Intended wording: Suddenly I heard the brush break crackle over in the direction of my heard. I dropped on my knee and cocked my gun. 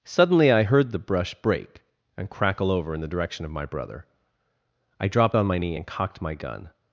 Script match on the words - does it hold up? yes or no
no